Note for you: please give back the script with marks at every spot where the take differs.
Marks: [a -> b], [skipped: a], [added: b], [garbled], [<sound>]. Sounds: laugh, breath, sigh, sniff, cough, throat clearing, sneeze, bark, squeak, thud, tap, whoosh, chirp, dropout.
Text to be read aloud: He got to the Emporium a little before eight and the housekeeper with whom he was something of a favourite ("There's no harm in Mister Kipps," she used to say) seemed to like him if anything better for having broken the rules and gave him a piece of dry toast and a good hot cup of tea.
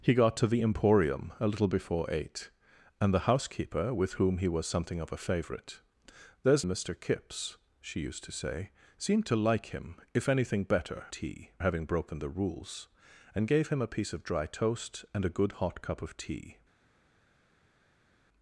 He got to the Emporium a little before eight and the housekeeper with whom he was something of a favourite ("There's [skipped: no harm in] Mister Kipps," she used to say) seemed to like him if anything better [for -> tea] having broken the rules and gave him a piece of dry toast and a good hot cup of tea.